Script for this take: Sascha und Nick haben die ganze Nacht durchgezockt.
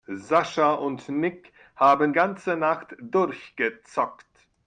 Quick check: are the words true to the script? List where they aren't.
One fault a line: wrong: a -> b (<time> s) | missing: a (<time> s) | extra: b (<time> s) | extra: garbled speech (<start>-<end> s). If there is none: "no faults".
missing: die (2.1 s)